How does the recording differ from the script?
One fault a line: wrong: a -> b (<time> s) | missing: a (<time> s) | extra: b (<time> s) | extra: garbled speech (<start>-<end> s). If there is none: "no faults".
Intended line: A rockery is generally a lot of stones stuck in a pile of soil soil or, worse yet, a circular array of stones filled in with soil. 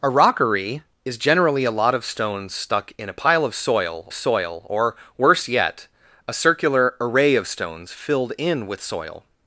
no faults